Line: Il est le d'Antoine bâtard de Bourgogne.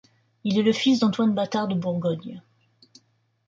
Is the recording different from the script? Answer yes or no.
yes